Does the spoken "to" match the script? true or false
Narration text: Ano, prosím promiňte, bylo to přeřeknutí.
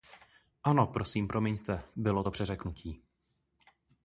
true